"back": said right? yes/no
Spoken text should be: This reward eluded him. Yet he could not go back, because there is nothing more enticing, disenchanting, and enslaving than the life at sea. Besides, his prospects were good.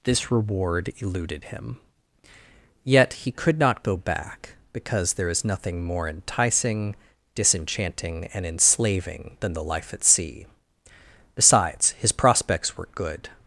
yes